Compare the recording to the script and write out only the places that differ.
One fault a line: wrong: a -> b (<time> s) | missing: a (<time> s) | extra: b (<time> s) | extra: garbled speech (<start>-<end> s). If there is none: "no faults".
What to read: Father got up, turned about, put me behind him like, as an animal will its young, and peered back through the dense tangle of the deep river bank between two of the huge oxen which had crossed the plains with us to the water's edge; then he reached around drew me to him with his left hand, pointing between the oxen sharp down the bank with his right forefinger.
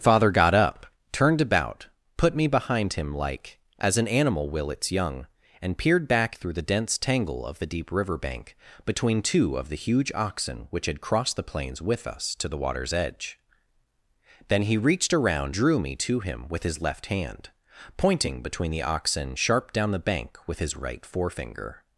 no faults